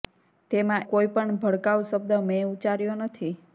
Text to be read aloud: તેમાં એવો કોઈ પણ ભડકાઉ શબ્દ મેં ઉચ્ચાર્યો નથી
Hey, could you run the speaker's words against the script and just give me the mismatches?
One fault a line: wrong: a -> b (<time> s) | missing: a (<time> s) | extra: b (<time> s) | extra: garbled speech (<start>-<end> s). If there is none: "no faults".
missing: એવો (0.9 s)